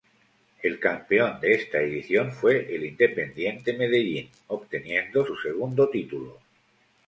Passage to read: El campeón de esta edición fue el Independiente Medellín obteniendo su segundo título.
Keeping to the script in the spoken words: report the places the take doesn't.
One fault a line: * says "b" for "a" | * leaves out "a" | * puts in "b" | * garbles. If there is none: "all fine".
all fine